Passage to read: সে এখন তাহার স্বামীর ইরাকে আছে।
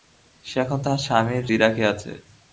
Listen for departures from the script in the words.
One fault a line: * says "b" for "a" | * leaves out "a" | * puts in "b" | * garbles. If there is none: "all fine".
all fine